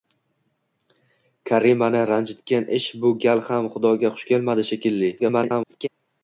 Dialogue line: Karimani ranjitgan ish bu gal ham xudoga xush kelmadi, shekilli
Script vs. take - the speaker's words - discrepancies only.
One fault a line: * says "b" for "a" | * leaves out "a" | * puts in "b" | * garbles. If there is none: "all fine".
* garbles